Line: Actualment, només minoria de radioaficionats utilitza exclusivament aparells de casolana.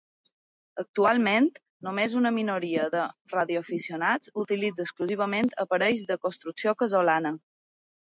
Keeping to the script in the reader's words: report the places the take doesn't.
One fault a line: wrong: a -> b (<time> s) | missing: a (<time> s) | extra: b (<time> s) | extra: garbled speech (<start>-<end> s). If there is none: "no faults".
extra: una (2.2 s)
extra: construcció (6.3 s)